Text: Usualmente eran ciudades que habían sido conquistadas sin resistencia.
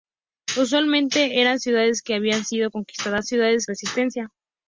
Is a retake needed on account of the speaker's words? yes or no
yes